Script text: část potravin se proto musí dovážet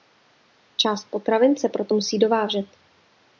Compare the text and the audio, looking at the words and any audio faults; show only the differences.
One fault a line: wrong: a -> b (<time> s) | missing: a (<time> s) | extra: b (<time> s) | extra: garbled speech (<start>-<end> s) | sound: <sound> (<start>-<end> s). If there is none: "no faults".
no faults